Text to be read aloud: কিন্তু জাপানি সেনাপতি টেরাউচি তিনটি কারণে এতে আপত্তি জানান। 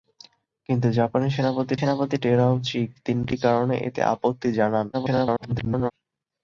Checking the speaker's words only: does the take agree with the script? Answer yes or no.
no